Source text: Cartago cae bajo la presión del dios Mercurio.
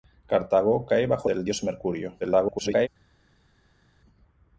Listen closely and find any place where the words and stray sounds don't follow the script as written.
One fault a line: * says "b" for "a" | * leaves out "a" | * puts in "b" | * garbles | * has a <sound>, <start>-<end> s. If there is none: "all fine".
* leaves out "la presión"
* garbles